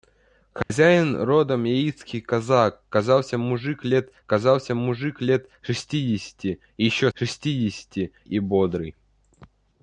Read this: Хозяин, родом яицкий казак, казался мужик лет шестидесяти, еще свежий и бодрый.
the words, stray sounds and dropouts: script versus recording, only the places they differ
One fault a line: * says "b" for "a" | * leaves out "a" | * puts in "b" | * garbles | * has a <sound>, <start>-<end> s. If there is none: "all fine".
* has a dropout, 0.6-0.7 s
* puts in "казался мужик лет"
* says "шестидесяти" for "свежий"